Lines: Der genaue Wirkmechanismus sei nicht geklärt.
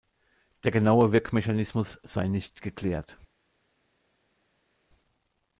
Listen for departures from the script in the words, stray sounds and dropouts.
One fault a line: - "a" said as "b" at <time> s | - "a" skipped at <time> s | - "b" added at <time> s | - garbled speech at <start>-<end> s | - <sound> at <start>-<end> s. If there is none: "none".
none